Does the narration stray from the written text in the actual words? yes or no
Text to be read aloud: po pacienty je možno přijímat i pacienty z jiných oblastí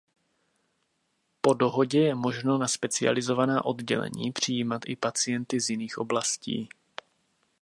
yes